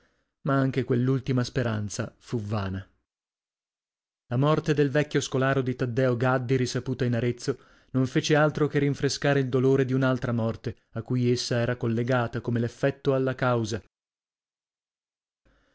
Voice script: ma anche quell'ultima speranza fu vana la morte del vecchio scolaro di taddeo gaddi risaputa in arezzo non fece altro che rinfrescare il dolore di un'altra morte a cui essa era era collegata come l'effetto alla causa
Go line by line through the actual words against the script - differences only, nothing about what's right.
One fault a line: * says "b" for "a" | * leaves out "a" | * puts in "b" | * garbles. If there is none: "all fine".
* leaves out "era"